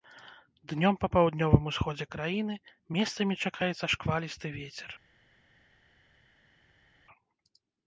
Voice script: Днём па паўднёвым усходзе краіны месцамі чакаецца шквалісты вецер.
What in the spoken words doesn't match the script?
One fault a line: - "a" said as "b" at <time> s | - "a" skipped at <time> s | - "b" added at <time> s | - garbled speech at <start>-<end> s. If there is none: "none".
none